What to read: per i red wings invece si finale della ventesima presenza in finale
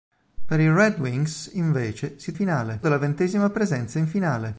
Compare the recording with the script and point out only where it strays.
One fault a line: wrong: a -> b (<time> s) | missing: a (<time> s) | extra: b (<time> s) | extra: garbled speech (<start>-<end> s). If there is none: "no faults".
no faults